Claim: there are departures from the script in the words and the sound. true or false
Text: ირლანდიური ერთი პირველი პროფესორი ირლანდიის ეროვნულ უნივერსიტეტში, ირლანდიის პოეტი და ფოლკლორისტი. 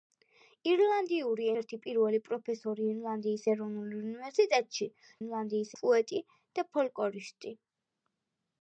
false